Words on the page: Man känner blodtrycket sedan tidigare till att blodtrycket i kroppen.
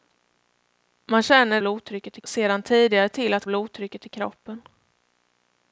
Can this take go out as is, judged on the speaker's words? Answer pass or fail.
pass